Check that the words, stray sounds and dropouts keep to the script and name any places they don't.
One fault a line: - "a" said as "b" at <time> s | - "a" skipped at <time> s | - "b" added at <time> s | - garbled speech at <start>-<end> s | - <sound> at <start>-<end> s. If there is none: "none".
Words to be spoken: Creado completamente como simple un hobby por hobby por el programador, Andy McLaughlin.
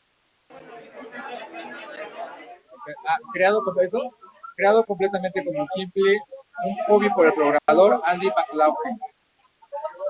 - "hobby por" skipped at 7.3 s
- dropout at 7.6-7.7 s